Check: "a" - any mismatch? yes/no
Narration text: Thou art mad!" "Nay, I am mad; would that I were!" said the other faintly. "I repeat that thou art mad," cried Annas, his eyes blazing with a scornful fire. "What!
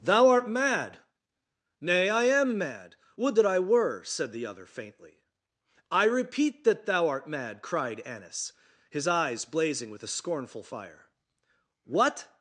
no